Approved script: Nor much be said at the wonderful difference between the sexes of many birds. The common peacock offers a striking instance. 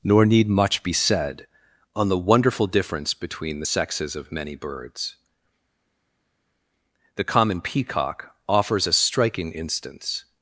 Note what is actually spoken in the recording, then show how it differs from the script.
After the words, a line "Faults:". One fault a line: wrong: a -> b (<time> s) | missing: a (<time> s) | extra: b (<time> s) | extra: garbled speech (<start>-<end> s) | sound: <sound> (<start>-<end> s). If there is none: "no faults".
Nor need much be said on the wonderful difference between the sexes of many birds. The common peacock offers a striking instance.
Faults:
extra: need (0.2 s)
wrong: at -> on (1.9 s)